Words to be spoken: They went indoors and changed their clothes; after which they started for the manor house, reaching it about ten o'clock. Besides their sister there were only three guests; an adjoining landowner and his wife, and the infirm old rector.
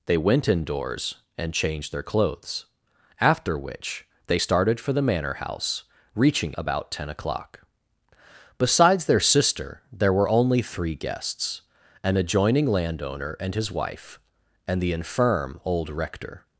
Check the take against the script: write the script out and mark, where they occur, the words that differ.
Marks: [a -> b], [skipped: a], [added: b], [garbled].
They went indoors and changed their clothes; after which they started for the manor house, reaching [skipped: it] about ten o'clock. Besides their sister there were only three guests; an adjoining landowner and his wife, and the infirm old rector.